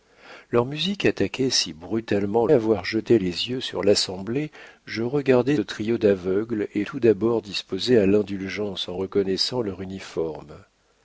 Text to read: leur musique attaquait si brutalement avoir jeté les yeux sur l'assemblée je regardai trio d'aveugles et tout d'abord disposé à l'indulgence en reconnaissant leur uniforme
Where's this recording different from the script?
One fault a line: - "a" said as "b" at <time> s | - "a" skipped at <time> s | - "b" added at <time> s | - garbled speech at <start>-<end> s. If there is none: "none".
none